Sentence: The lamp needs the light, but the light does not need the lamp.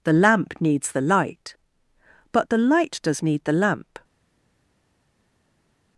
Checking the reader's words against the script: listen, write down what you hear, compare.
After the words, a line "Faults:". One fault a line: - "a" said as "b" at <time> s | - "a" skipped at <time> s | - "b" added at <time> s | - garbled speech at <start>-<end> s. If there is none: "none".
The lamp needs the light, but the light does need the lamp.
Faults:
- "not" skipped at 3.2 s